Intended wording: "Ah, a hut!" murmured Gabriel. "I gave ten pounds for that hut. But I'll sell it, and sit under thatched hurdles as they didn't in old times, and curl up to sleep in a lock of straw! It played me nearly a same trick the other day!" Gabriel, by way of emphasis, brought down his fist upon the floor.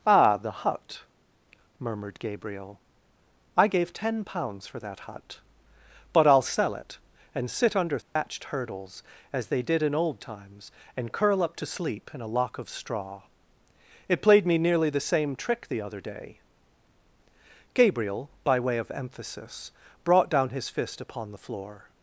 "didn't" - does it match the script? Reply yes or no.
no